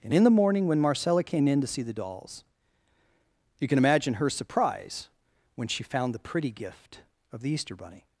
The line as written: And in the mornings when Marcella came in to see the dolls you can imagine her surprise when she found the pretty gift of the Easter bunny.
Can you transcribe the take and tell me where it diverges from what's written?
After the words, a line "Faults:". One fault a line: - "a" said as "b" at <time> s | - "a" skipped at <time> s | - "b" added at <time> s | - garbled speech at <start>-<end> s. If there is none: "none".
And in the morning when Marcella came in to see the dolls you can imagine her surprise when she found the pretty gift of the Easter bunny.
Faults:
- "mornings" said as "morning" at 0.3 s